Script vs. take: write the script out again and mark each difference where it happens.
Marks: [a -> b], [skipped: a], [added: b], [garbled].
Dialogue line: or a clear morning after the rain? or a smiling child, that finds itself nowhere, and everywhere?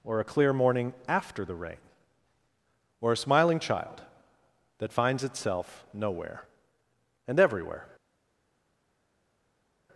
or a clear morning after the rain? or a smiling child, that finds itself nowhere, and everywhere?